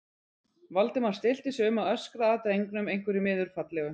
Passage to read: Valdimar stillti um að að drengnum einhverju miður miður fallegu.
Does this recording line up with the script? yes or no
no